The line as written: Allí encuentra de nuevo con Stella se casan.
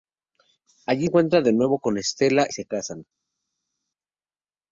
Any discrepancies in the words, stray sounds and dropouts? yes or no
no